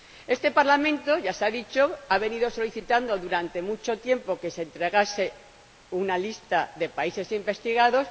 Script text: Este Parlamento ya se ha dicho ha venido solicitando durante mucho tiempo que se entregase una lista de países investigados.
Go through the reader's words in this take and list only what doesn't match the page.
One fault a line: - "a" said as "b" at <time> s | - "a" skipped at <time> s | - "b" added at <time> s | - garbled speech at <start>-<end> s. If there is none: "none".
none